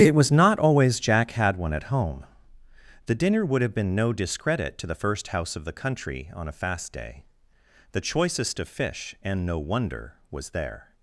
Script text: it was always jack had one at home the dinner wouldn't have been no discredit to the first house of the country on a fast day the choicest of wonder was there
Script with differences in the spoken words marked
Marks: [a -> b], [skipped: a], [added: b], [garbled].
it was [added: not] always jack had one at home the dinner [wouldn't -> would] have been no discredit to the first house of the country on a fast day the choicest of [added: fish and no] wonder was there